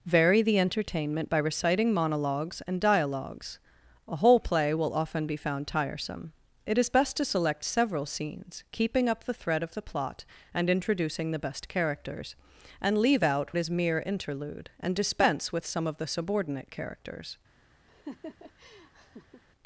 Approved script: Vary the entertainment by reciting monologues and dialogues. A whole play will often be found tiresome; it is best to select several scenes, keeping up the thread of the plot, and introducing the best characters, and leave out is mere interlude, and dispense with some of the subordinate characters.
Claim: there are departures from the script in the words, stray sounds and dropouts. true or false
true